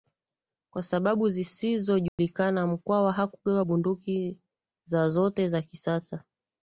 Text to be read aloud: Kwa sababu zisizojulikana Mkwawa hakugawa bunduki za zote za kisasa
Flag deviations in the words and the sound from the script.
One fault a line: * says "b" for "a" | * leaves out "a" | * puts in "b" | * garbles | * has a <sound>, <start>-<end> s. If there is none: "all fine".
* has a dropout, 2.1-2.2 s